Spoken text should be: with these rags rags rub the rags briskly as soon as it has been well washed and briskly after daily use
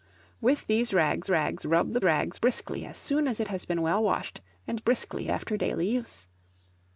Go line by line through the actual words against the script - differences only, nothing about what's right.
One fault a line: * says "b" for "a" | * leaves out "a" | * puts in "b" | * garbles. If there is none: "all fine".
all fine